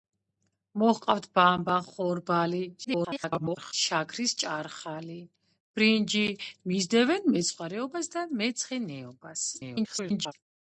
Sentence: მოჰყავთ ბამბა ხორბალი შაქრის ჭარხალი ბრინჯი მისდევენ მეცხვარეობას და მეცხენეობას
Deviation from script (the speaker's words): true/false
true